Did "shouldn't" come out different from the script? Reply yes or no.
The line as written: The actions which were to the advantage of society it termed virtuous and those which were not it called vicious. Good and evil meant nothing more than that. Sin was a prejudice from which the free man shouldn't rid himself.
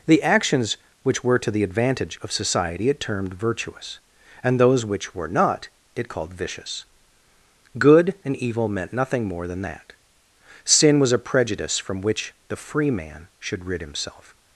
yes